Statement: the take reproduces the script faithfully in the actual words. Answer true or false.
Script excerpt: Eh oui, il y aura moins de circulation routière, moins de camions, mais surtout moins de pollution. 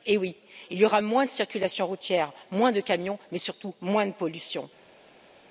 true